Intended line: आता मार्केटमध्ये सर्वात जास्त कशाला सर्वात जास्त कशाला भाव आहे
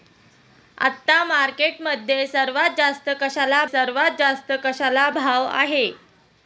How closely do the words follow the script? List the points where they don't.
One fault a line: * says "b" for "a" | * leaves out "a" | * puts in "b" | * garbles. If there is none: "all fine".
all fine